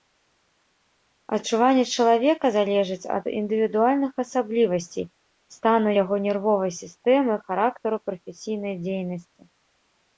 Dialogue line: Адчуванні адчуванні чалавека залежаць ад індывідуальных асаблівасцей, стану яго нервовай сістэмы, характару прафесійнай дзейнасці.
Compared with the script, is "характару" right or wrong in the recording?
right